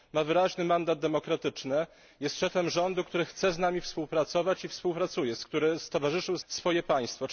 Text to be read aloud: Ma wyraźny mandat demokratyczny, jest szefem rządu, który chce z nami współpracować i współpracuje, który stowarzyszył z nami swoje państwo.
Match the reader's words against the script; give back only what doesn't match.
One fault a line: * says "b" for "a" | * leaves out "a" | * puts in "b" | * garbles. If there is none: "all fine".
* leaves out "nami"